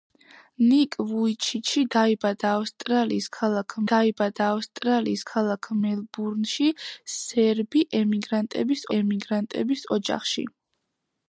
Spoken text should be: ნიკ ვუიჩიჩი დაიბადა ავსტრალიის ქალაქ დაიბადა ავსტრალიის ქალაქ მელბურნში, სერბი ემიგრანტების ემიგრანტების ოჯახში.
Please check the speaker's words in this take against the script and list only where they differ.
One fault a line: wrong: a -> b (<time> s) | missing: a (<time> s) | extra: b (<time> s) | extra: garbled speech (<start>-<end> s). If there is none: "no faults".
no faults